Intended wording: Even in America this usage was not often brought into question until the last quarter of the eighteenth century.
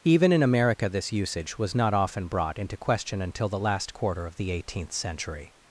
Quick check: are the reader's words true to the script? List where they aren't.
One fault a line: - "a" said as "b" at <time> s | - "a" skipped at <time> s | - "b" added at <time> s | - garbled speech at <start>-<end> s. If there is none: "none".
none